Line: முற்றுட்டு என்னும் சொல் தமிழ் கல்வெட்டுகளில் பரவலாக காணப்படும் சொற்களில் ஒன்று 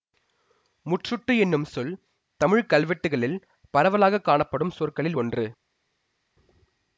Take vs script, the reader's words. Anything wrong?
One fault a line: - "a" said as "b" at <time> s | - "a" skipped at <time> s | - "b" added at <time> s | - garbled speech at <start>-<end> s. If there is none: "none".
none